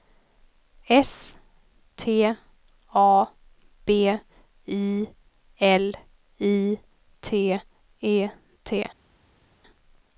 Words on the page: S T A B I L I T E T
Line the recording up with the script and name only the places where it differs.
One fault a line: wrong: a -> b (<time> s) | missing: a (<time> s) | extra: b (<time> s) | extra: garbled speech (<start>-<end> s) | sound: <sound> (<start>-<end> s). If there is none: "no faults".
no faults